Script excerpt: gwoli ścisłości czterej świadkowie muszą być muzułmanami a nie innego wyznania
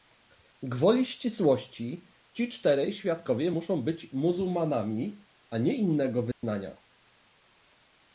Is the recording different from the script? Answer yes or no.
yes